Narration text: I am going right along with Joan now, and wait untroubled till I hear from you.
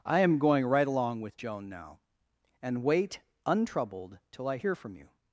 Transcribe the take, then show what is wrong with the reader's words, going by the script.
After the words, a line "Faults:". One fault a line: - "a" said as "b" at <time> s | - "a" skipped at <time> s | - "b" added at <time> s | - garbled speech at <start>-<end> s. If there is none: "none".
I am going right along with Joan now, and wait untroubled till I hear from you.
Faults:
none